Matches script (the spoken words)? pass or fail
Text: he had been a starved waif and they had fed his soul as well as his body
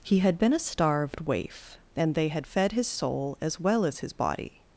pass